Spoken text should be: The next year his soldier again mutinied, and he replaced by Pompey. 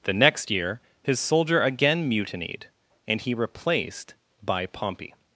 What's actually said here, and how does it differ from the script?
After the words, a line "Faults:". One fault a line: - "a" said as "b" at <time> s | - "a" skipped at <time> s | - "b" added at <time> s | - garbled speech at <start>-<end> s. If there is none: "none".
The next year his soldier again mutinied, and he replaced by Pompey.
Faults:
none